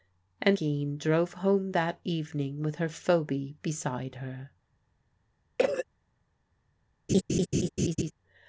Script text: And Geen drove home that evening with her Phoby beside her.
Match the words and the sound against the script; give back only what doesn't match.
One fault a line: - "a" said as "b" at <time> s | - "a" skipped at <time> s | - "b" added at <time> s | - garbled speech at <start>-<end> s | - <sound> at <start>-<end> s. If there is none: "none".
- cough at 5.6-5.8 s
- laugh at 7.1-8.1 s